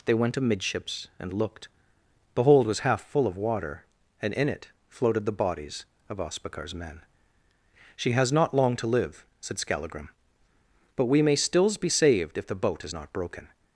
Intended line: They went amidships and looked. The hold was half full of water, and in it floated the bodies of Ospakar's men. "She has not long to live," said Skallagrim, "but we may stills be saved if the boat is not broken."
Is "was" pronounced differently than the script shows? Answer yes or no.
no